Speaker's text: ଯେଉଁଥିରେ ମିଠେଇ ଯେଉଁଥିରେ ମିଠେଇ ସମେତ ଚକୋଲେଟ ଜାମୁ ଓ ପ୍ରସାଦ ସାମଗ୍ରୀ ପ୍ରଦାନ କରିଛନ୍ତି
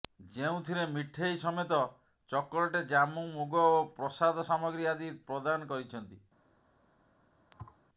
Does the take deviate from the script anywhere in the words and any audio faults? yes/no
yes